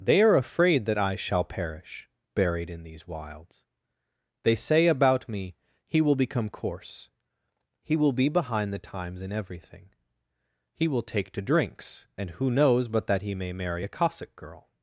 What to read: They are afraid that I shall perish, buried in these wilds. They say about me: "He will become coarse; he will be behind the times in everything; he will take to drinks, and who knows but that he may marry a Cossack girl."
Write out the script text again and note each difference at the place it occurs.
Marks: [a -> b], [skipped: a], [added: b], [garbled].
They are afraid that I shall perish, buried in these wilds. They say about me: "He will become coarse; he will be behind the times in everything; he will take to drinks, and who knows but that he may marry a Cossack girl."